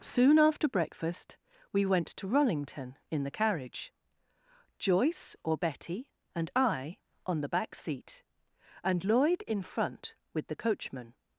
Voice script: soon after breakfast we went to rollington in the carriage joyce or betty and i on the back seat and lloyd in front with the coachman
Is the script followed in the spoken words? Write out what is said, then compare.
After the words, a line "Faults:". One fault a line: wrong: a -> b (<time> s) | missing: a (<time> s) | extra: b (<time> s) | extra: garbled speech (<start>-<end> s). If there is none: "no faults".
soon after breakfast we went to rollington in the carriage joyce or betty and i on the back seat and lloyd in front with the coachman
Faults:
no faults